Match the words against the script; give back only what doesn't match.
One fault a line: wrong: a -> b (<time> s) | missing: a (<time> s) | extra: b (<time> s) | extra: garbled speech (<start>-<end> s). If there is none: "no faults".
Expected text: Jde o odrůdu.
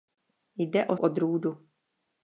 no faults